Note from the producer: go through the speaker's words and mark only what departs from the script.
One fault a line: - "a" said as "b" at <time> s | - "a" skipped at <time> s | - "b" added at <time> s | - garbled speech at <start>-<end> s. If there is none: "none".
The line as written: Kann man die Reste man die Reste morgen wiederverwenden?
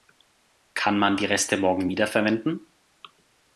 - "man die Reste" skipped at 1.6 s